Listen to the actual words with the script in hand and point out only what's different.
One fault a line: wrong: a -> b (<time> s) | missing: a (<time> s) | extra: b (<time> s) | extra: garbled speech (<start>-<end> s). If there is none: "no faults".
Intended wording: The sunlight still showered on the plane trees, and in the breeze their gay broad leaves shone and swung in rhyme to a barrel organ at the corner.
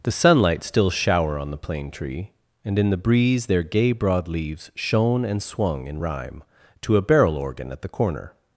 wrong: showered -> shower (0.9 s)
wrong: trees -> tree (1.9 s)